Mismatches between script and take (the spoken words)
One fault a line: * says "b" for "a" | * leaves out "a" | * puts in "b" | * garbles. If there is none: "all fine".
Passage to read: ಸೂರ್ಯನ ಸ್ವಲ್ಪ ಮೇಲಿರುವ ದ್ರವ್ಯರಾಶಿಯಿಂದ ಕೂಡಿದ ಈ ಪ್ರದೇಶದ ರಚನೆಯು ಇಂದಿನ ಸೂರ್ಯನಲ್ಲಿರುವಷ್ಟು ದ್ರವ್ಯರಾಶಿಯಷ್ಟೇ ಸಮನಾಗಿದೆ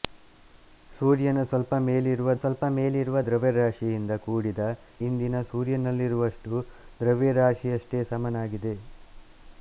* puts in "ಸ್ವಲ್ಪ ಮೇಲಿರುವ"
* leaves out "ಈ ಪ್ರದೇಶದ ರಚನೆಯು"